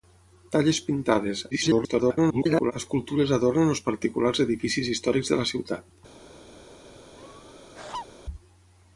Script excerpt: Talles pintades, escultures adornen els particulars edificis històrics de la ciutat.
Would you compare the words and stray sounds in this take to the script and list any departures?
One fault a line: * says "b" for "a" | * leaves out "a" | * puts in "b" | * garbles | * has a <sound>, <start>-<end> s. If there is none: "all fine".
* garbles
* has a laugh, 7.1-8.1 s